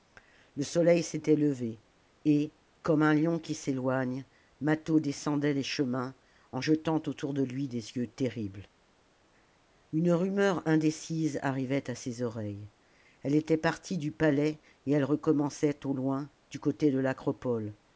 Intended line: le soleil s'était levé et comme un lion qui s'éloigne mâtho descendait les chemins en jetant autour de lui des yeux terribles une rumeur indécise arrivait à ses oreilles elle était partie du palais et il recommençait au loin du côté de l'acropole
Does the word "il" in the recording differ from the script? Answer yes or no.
yes